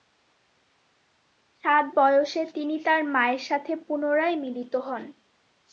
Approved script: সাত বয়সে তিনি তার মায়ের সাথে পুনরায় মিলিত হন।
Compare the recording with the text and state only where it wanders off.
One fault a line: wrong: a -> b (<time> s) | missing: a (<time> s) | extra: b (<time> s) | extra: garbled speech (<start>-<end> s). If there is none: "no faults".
no faults